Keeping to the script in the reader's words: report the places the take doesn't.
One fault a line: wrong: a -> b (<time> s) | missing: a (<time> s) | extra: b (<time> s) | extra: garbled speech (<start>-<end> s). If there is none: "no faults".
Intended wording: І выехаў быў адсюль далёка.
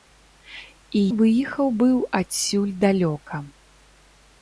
no faults